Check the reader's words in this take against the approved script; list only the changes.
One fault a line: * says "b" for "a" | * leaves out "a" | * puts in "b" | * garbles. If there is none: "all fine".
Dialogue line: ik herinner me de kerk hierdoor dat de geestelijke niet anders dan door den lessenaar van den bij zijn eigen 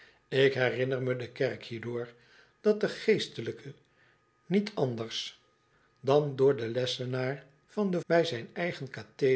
all fine